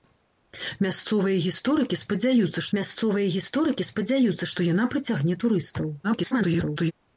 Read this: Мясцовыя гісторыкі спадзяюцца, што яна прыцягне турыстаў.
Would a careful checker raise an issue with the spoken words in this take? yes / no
yes